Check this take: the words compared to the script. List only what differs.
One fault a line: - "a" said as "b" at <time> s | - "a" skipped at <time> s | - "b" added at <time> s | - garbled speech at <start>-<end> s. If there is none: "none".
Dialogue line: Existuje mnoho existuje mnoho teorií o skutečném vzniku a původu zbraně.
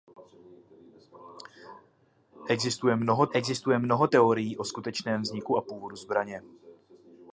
none